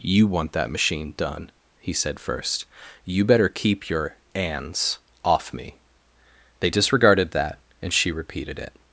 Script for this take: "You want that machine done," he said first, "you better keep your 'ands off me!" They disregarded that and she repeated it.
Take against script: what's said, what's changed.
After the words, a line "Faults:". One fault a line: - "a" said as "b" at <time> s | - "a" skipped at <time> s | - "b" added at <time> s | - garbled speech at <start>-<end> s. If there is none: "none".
"You want that machine done," he said first, "you better keep your 'ands off me!" They disregarded that and she repeated it.
Faults:
none